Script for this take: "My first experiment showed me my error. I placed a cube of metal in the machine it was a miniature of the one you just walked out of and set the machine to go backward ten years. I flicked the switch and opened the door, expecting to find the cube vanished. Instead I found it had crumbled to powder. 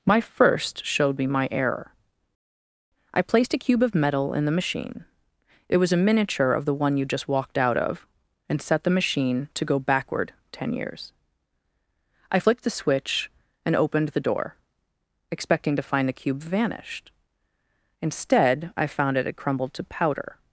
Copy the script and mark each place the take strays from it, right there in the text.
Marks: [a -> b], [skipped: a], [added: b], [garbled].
"My first [skipped: experiment] showed me my error. I placed a cube of metal in the machine it was a miniature of the one you just walked out of and set the machine to go backward ten years. I flicked the switch and opened the door, expecting to find the cube vanished. Instead I found it had crumbled to powder.